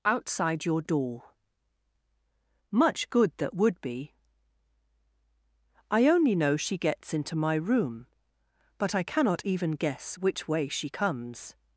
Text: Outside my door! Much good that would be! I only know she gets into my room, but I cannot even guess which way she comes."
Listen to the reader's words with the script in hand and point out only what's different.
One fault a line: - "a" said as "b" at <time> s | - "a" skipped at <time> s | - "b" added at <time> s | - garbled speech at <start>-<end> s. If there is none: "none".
- "my" said as "your" at 0.7 s